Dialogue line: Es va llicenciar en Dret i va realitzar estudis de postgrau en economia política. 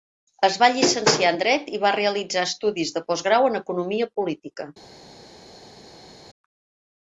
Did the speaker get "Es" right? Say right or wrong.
right